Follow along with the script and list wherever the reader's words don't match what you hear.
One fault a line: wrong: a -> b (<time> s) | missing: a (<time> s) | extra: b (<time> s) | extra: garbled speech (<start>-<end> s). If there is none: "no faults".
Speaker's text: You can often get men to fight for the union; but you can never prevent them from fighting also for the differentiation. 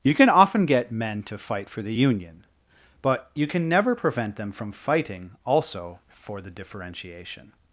no faults